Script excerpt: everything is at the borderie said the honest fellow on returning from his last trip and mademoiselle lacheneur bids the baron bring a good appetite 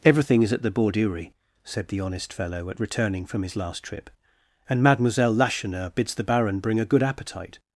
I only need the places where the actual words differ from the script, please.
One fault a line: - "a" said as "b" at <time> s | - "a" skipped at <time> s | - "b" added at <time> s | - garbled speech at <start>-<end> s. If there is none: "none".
- "on" said as "at" at 2.7 s